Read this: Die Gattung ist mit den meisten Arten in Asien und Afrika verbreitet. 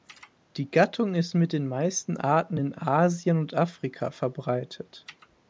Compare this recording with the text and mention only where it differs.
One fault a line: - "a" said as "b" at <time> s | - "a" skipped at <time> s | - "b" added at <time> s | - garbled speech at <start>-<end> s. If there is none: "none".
none